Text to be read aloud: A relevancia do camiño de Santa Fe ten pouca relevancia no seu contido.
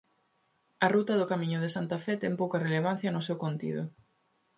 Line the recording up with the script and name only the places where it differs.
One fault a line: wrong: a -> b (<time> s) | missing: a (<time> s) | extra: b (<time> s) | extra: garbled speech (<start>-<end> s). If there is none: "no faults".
wrong: relevancia -> ruta (0.9 s)